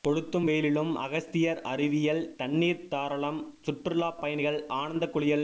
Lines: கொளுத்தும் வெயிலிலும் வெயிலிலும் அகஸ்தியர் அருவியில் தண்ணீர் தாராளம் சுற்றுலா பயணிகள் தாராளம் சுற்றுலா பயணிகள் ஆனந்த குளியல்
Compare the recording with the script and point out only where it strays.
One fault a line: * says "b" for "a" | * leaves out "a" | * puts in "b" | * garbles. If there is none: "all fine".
* leaves out "வெயிலிலும்"
* leaves out "தாராளம் சுற்றுலா பயணிகள்"